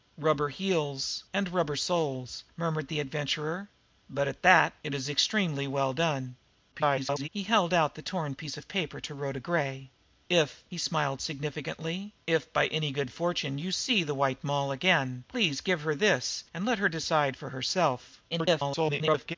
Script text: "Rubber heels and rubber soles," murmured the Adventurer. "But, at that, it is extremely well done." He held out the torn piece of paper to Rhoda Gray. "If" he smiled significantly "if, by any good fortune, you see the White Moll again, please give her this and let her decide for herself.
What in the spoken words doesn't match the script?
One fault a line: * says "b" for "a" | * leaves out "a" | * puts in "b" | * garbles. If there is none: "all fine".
* garbles
* garbles